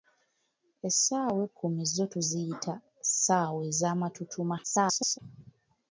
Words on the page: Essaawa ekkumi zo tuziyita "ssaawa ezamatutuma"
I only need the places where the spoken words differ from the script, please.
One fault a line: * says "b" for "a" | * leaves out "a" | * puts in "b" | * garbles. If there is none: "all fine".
* garbles